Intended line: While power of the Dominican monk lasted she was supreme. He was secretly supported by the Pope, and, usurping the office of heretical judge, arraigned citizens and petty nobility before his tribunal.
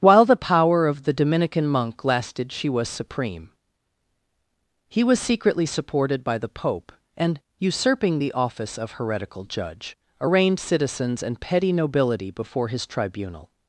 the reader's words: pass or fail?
fail